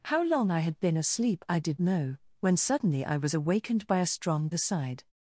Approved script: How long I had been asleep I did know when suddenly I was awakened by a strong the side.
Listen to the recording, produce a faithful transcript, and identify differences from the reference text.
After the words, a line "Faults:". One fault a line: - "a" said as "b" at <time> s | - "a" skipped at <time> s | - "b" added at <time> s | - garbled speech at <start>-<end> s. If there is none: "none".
How long I had been asleep I did know when suddenly I was awakened by a strong the side.
Faults:
none